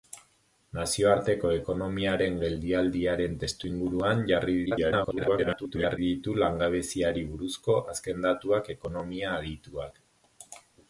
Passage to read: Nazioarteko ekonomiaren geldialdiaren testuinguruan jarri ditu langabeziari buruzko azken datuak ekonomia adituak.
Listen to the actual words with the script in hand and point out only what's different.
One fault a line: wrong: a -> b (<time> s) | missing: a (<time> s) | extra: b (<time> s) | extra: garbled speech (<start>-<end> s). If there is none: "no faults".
extra: garbled speech (4.7-6.0 s)